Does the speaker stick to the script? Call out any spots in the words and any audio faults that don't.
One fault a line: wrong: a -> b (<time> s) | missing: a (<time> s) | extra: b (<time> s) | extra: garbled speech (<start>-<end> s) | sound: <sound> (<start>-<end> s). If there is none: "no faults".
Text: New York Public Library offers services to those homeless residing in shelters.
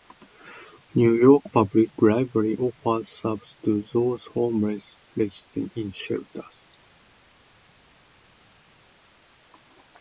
no faults